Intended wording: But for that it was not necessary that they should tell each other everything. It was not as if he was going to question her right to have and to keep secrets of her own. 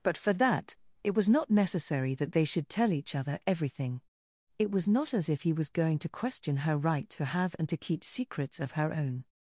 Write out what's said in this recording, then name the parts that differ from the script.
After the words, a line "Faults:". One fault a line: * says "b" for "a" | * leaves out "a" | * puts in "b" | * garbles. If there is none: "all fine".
But for that it was not necessary that they should tell each other everything. It was not as if he was going to question her right to have and to keep secrets of her own.
Faults:
all fine